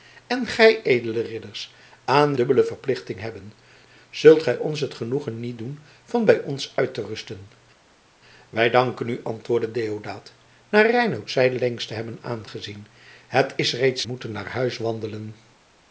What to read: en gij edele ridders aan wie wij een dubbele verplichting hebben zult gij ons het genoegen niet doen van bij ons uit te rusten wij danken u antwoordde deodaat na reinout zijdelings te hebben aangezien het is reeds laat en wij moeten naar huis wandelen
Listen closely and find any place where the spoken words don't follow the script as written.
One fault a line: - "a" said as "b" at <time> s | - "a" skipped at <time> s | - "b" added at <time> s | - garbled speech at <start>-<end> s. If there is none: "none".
- "wie wij een" skipped at 2.3 s
- "laat en wij" skipped at 14.1 s